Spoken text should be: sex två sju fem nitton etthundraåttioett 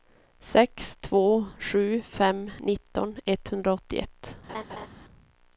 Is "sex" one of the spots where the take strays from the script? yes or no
no